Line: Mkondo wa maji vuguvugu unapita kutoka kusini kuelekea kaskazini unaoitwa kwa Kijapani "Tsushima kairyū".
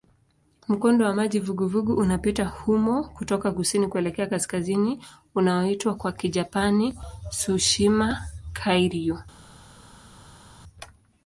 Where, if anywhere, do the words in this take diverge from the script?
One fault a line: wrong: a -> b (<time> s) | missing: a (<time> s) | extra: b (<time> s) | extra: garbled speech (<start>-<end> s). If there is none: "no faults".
extra: humo (2.5 s)